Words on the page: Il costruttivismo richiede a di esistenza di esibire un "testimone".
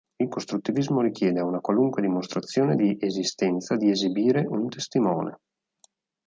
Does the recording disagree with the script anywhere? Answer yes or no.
yes